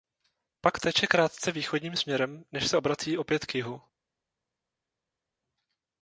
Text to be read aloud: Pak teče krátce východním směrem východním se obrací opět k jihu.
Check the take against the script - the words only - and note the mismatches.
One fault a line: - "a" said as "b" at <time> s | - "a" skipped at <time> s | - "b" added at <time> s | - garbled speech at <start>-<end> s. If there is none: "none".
- "východním" said as "než" at 2.5 s